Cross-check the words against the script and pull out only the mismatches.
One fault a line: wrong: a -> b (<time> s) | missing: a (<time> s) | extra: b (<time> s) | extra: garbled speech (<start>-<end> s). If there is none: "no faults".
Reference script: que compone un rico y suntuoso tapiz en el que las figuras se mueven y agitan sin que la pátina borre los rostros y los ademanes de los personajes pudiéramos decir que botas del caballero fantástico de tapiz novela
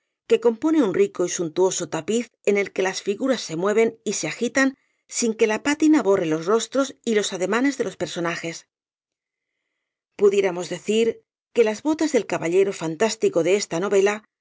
extra: se (4.1 s)
extra: las (11.6 s)
wrong: tapiz -> esta (13.6 s)